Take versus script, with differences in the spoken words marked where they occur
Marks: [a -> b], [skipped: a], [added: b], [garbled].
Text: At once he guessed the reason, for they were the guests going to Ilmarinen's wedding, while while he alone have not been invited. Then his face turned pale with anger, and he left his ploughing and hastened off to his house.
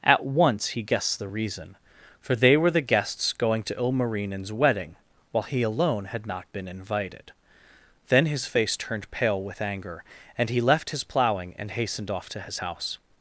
At once he guessed the reason, for they were the guests going to Ilmarinen's wedding, while [skipped: while] he alone [have -> had] not been invited. Then his face turned pale with anger, and he left his ploughing and hastened off to his house.